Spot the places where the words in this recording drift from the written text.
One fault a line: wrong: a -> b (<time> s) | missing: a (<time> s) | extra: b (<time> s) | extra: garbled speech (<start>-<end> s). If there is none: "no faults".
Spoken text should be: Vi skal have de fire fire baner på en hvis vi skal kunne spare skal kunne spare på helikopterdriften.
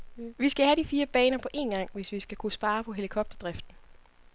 missing: fire (1.1 s)
extra: gang (1.7 s)
missing: skal kunne spare (2.8 s)